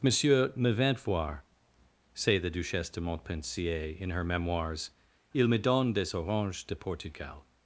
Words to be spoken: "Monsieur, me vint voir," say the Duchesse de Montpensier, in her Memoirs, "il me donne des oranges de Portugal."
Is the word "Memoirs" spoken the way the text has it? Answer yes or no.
yes